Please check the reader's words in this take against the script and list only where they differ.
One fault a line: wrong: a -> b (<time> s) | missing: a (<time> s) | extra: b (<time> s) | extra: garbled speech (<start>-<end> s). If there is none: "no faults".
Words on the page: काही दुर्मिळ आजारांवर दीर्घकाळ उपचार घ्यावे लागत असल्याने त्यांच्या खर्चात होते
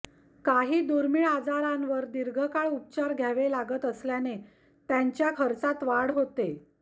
extra: वाढ (5.8 s)